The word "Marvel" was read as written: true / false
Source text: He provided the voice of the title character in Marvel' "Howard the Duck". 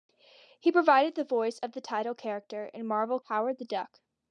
true